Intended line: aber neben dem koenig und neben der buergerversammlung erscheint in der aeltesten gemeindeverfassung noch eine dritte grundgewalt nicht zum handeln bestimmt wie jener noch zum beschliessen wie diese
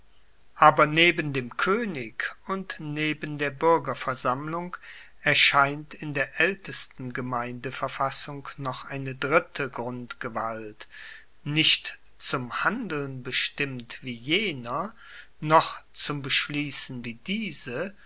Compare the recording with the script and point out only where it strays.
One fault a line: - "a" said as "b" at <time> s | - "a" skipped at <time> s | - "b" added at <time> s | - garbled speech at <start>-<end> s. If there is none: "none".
none